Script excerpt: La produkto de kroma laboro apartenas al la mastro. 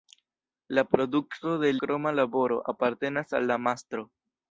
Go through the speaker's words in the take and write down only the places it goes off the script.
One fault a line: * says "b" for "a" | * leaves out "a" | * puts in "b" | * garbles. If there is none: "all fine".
all fine